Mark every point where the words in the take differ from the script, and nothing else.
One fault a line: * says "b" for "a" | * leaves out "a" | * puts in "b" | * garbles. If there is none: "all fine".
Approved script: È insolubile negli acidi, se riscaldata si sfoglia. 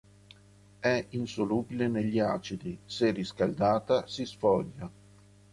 all fine